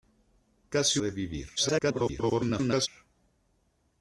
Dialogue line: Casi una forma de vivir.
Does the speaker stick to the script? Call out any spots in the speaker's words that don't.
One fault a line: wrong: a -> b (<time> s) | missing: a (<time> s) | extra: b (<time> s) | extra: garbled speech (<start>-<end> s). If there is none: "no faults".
missing: una forma (1.0 s)
extra: garbled speech (1.6-2.9 s)